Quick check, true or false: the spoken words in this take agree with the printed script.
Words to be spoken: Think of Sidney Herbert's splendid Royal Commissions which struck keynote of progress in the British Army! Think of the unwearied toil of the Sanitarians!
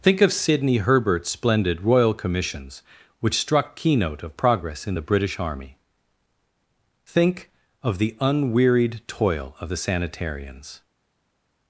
true